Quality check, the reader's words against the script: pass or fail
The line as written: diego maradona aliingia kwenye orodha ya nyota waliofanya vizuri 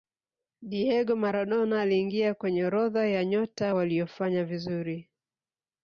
pass